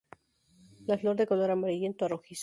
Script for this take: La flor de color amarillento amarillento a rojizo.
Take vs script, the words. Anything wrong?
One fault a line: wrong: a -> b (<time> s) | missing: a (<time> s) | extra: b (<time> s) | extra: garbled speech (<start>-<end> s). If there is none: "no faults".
missing: amarillento (2.0 s)